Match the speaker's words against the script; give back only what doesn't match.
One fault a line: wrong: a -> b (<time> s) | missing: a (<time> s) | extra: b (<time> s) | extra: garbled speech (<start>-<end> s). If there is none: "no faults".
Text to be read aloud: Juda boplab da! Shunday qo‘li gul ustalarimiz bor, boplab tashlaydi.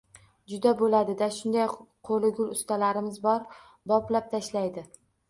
wrong: boplab -> bo‘ladi (0.8 s)